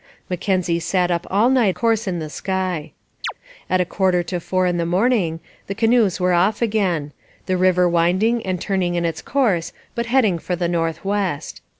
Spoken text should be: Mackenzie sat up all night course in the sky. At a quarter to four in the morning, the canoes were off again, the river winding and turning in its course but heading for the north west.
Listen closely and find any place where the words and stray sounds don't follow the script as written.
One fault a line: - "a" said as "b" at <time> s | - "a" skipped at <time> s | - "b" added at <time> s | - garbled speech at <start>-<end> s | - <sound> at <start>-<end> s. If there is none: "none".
- chirp at 3.2-3.3 s